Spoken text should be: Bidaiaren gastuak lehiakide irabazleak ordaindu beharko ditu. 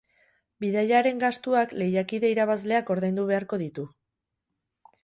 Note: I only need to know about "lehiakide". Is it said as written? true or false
true